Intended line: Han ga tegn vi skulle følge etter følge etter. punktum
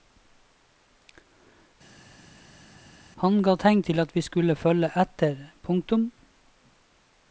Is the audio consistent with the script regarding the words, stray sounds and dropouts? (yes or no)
no